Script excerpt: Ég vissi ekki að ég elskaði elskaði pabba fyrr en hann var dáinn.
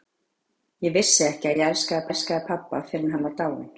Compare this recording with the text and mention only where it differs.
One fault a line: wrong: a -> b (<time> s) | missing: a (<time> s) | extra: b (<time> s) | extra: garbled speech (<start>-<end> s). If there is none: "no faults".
no faults